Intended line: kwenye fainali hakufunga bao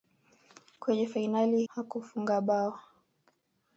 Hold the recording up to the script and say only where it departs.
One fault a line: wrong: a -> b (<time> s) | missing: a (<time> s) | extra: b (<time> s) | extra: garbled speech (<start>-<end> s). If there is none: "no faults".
no faults